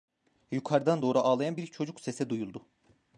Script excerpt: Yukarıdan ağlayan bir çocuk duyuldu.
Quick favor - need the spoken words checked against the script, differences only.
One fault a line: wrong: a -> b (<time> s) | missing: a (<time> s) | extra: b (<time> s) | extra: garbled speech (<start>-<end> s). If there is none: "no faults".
extra: doğru (1.0 s)
extra: sesi (2.0 s)